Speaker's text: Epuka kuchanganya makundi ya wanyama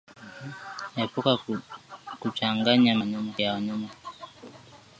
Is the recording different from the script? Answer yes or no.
yes